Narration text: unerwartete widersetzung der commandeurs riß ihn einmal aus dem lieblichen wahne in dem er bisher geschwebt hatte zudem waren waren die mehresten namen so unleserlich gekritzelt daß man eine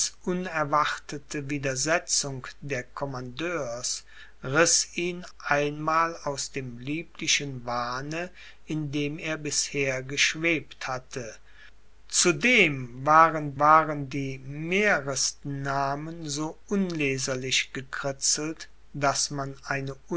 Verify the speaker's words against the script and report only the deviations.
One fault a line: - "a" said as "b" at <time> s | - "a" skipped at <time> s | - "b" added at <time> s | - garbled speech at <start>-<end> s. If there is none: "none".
none